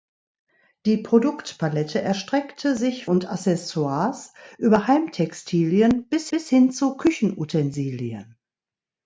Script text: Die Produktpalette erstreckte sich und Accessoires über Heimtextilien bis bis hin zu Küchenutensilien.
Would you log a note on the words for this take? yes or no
no